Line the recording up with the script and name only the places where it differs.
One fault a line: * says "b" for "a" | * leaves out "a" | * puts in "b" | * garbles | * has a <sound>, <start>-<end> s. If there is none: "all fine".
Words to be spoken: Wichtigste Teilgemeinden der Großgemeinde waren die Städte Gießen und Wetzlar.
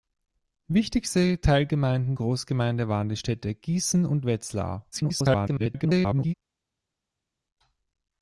* leaves out "der"
* garbles